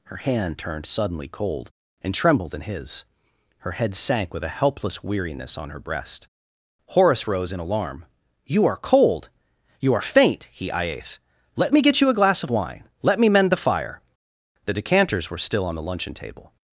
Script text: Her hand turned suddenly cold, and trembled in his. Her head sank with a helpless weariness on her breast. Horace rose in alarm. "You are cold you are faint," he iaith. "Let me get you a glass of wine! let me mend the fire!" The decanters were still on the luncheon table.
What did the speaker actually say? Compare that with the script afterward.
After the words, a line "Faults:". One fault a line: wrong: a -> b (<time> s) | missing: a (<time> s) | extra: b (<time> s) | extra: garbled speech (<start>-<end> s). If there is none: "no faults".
Her hand turned suddenly cold, and trembled in his. Her head sank with a helpless weariness on her breast. Horace rose in alarm. "You are cold you are faint," he iaith. "Let me get you a glass of wine! let me mend the fire!" The decanters were still on the luncheon table.
Faults:
no faults